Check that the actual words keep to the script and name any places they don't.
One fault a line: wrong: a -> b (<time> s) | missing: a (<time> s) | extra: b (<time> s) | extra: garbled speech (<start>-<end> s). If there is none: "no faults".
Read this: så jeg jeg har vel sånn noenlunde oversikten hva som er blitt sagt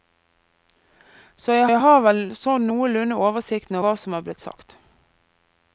no faults